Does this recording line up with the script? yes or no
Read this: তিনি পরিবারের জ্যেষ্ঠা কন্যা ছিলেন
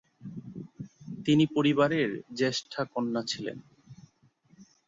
yes